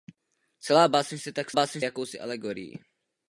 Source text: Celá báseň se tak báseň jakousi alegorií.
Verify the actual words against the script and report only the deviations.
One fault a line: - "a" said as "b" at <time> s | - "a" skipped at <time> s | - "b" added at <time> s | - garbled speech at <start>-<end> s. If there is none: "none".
none